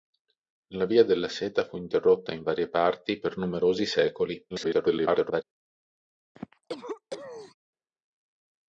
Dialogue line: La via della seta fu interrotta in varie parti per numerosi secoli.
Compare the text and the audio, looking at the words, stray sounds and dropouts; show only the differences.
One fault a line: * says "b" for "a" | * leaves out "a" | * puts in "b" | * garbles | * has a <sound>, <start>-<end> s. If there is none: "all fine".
* garbles
* has a cough, 6.4-7.6 s